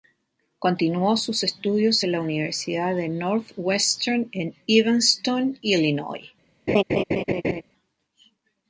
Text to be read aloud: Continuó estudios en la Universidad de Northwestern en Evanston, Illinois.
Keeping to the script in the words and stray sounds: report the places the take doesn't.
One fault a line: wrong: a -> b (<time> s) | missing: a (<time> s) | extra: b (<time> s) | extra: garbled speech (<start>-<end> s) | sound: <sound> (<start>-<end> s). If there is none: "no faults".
extra: sus (1.1 s)
sound: laugh (6.7-7.6 s)